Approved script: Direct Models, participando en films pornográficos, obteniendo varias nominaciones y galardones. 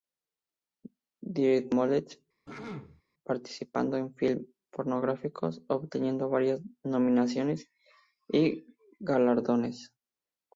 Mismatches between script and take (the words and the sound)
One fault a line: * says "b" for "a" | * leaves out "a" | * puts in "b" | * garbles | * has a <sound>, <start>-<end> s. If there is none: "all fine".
* has a throat clearing, 2.5-3.0 s